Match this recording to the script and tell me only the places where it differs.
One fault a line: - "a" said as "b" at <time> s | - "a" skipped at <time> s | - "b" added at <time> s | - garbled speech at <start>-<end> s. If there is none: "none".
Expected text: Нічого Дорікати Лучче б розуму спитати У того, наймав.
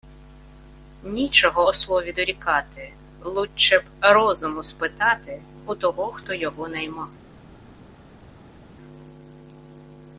- "Ослові" added at 1.7 s
- "хто його" added at 6.0 s